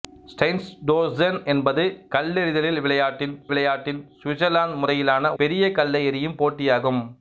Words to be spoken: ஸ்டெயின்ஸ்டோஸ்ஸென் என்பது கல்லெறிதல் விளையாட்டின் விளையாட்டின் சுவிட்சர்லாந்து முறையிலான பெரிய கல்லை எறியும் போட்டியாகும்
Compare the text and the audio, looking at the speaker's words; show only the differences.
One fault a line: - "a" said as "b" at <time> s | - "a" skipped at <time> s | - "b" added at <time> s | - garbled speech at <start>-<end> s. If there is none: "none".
none